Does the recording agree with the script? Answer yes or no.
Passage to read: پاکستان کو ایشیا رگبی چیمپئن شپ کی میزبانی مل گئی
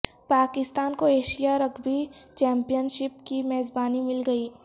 yes